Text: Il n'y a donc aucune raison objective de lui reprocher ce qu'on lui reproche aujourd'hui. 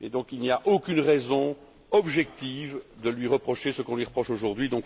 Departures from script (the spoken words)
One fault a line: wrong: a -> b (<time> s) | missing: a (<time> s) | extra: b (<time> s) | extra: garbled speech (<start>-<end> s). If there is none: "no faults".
no faults